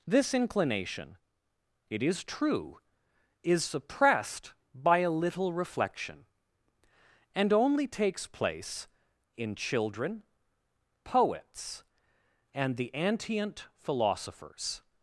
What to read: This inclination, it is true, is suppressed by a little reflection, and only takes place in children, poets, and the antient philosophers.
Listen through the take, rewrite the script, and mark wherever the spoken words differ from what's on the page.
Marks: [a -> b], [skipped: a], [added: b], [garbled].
This inclination, it is true, is suppressed by a little reflection, and only takes place in children, poets, and the antient philosophers.